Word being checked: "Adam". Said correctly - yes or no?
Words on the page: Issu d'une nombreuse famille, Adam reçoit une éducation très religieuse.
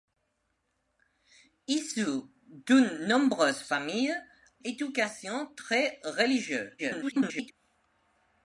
no